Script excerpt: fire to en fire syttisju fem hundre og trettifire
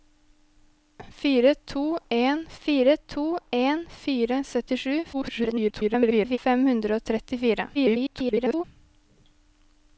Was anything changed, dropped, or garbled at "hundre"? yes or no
no